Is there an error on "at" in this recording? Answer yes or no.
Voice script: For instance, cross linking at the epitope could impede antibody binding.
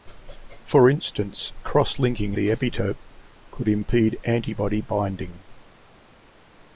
yes